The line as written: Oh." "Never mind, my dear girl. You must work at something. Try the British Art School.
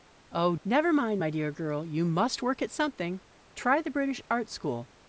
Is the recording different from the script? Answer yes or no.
no